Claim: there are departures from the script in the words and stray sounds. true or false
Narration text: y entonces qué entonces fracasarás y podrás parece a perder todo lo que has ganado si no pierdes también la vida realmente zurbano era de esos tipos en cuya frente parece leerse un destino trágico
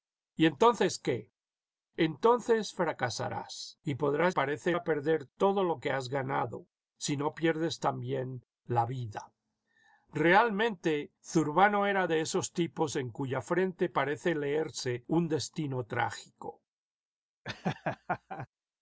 true